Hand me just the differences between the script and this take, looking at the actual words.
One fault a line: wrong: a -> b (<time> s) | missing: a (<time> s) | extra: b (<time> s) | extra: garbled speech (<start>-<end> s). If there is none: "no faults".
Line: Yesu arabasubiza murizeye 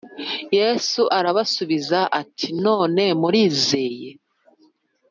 extra: ati None (2.2 s)